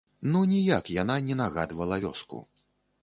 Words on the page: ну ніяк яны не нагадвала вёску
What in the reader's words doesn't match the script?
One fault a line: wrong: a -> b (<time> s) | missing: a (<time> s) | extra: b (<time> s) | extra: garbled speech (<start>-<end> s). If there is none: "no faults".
wrong: яны -> яна (0.9 s)